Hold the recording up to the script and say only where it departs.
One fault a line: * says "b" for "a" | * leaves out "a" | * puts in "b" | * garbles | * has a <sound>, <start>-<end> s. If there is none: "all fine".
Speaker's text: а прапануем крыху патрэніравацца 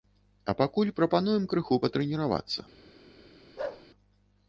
* puts in "пакуль"
* has a bark, 3.6-3.9 s